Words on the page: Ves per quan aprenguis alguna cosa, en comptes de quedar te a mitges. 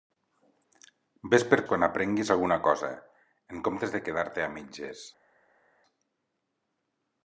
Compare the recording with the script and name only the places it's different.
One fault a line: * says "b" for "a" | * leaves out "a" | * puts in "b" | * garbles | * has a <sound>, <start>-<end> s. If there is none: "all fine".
all fine